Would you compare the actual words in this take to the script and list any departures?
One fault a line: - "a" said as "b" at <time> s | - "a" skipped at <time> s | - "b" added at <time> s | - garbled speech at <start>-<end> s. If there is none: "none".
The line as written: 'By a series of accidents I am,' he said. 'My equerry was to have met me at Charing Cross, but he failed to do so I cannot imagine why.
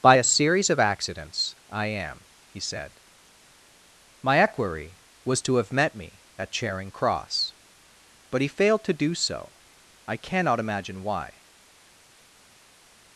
none